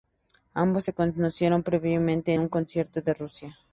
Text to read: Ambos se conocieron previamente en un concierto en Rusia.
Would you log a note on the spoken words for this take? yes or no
yes